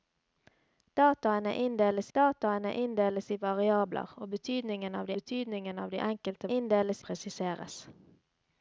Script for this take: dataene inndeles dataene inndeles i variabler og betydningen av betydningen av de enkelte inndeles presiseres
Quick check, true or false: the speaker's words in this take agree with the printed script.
true